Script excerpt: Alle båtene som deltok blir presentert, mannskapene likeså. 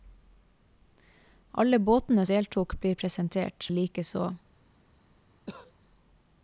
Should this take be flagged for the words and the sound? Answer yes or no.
yes